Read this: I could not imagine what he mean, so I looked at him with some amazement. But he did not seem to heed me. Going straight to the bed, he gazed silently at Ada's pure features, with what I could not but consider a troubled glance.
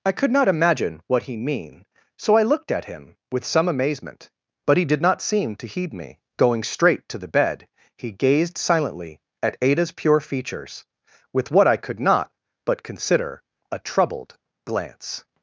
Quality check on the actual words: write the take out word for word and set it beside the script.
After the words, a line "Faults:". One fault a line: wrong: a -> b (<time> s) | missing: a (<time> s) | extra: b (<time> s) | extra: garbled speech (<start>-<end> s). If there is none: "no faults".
I could not imagine what he mean, so I looked at him with some amazement. But he did not seem to heed me. Going straight to the bed, he gazed silently at Ada's pure features, with what I could not but consider a troubled glance.
Faults:
no faults